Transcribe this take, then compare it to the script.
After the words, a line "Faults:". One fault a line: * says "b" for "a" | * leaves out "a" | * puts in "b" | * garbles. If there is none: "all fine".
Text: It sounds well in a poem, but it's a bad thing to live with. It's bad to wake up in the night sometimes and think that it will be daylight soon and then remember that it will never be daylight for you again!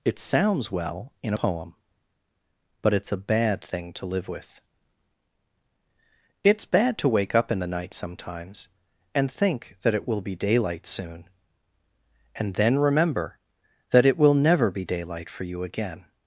It sounds well in poem, but it's a bad thing to live with. It's bad to wake up in the night sometimes and think that it will be daylight soon and then remember that it will never be daylight for you again!
Faults:
* leaves out "a"